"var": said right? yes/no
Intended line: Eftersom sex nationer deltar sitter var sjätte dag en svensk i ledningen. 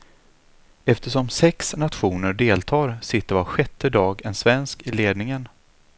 yes